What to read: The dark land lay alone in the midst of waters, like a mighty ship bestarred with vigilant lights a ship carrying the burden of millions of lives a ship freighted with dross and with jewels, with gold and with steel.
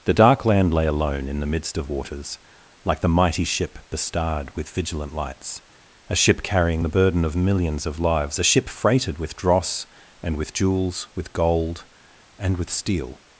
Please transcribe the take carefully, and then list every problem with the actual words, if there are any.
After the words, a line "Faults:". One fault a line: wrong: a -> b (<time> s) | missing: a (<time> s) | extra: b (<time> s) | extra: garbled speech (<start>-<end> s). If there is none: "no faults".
The dark land lay alone in the midst of waters, like the mighty ship bestarred with vigilant lights a ship carrying the burden of millions of lives a ship freighted with dross and with jewels, with gold and with steel.
Faults:
wrong: a -> the (3.0 s)